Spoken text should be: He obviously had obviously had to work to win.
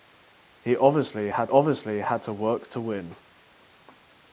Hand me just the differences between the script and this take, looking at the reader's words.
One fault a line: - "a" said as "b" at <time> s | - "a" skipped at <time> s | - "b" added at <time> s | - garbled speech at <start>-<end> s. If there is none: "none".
none